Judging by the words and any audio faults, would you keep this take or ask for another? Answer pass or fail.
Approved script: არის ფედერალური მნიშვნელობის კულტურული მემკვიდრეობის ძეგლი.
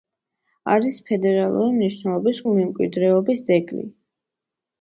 fail